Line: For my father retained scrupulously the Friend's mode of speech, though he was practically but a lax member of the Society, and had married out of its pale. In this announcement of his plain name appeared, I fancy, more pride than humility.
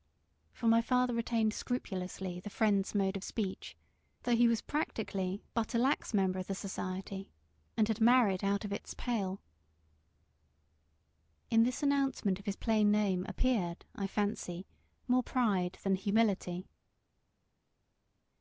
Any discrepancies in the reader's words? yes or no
no